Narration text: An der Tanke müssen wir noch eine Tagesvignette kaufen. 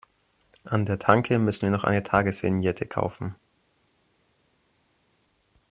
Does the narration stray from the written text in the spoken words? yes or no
no